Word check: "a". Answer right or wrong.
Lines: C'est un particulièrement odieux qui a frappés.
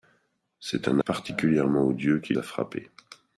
right